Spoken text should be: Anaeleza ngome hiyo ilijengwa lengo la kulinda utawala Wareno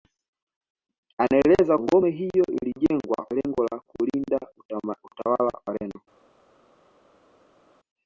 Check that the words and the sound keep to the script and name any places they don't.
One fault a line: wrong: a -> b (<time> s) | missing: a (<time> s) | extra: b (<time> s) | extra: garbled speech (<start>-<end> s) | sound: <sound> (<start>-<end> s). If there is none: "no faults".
no faults